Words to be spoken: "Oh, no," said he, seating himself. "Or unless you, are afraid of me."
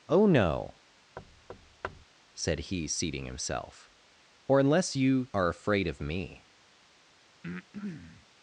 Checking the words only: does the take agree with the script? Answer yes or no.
yes